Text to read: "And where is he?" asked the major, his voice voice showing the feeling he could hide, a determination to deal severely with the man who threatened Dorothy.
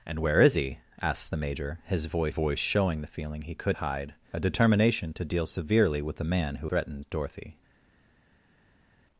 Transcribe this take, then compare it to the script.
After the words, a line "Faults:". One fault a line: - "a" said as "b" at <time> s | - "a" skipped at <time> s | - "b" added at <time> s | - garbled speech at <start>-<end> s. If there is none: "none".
"And where is he?" asked the major, his voice voice showing the feeling he could hide, a determination to deal severely with the man who threatened Dorothy.
Faults:
none